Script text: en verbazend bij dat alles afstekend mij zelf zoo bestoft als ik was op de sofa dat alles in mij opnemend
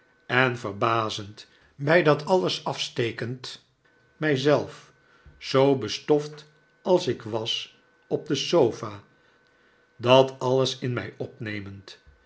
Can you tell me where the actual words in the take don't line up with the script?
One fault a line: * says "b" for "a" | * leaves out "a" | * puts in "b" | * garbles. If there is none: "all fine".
all fine